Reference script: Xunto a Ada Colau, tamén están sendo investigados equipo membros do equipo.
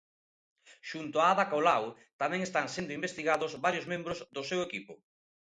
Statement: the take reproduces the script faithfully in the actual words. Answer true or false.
false